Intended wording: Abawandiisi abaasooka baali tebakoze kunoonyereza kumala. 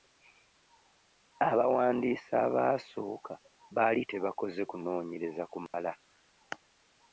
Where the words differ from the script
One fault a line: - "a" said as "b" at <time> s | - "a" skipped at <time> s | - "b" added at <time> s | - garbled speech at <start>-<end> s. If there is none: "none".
none